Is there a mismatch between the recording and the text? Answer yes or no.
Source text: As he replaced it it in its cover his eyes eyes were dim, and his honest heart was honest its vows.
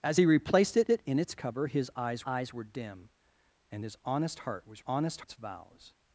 no